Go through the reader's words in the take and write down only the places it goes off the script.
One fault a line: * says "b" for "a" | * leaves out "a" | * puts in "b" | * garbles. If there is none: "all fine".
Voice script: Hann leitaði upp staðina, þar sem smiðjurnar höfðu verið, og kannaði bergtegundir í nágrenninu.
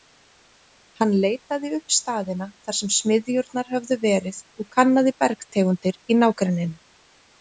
all fine